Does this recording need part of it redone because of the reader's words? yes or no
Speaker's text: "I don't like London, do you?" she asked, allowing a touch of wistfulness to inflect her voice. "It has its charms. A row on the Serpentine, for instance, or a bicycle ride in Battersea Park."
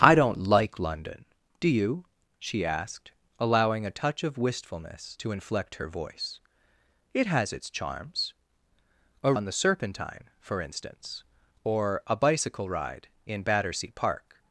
yes